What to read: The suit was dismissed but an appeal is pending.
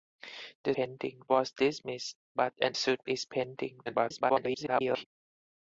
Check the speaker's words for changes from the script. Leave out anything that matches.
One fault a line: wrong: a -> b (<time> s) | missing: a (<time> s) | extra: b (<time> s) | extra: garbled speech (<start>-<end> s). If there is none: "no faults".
wrong: suit -> pending (0.7 s)
wrong: appeal -> suit (2.7 s)
extra: garbled speech (3.9-5.0 s)